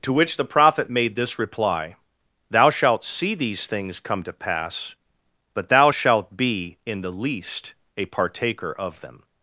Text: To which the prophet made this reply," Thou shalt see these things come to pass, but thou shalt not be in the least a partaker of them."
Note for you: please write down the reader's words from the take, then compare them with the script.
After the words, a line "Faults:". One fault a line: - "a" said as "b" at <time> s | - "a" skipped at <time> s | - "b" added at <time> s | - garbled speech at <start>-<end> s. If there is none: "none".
To which the prophet made this reply," Thou shalt see these things come to pass, but thou shalt be in the least a partaker of them."
Faults:
- "not" skipped at 6.4 s